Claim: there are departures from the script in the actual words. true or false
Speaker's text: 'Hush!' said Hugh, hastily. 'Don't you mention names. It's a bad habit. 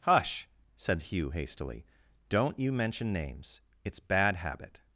true